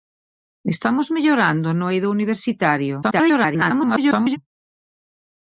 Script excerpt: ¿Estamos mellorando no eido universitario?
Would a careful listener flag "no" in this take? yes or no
no